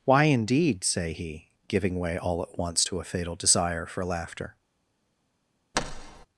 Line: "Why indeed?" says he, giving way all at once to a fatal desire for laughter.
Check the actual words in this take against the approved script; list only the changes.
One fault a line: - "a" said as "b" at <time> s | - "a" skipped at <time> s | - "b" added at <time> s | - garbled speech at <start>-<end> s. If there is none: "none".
- "says" said as "say" at 0.8 s